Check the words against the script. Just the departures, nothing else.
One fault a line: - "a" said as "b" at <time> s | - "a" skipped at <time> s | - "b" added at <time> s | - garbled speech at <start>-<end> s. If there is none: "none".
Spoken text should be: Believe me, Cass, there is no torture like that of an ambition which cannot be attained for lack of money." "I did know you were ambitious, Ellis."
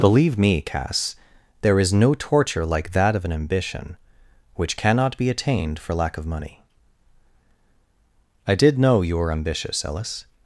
none